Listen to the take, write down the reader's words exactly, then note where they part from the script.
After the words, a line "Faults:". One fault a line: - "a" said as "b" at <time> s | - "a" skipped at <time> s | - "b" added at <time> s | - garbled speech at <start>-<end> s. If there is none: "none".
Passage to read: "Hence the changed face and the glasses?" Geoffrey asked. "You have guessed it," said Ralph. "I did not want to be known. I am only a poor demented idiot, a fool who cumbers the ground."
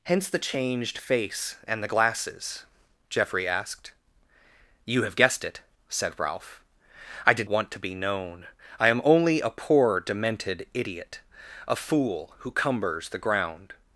"Hence the changed face and the glasses?" Geoffrey asked. "You have guessed it," said Ralph. "I did want to be known. I am only a poor demented idiot, a fool who cumbers the ground."
Faults:
- "not" skipped at 7.5 s